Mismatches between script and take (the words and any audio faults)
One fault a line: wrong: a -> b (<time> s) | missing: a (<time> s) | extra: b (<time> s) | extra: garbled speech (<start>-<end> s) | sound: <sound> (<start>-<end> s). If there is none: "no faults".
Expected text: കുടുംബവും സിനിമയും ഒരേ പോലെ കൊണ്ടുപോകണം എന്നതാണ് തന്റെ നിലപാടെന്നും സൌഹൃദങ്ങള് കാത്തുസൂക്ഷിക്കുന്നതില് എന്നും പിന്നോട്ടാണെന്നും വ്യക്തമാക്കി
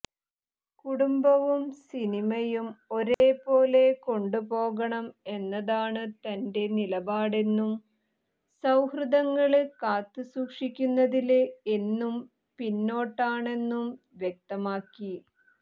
sound: dropout (3.1-3.2 s)